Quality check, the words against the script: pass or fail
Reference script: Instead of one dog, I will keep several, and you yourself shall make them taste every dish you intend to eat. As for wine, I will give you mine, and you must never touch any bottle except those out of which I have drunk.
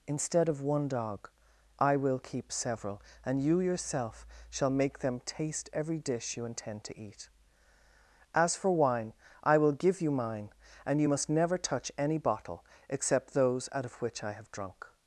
pass